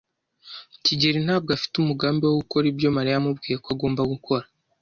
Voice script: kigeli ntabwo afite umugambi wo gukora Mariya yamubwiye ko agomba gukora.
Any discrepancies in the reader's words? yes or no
yes